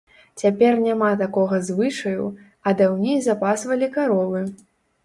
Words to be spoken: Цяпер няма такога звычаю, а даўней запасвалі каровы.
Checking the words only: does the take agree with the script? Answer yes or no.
yes